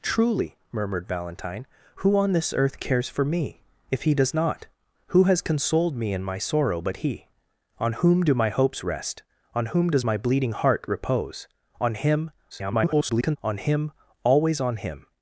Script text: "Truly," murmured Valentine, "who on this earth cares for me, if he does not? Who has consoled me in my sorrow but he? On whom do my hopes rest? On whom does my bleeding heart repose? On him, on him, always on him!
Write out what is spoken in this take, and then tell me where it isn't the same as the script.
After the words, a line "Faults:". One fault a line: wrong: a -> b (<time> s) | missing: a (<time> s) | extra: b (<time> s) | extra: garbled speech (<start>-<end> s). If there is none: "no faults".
"Truly," murmured Valentine, "who on this earth cares for me, if he does not? Who has consoled me in my sorrow but he? On whom do my hopes rest? On whom does my bleeding heart repose? On him, [garbled] on him, always on him!
Faults:
extra: garbled speech (12.5-13.4 s)